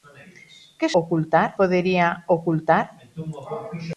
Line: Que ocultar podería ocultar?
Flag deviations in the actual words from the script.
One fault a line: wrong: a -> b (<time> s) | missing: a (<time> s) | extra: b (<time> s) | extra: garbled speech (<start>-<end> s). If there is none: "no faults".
no faults